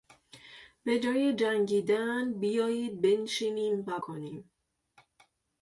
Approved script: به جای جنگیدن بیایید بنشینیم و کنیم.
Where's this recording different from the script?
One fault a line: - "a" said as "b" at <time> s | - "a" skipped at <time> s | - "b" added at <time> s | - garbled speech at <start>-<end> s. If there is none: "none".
none